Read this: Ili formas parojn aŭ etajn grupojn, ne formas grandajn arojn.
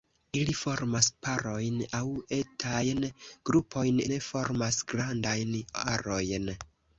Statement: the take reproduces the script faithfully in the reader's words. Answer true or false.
true